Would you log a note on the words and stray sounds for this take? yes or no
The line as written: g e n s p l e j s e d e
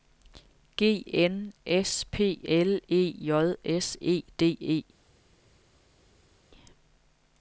yes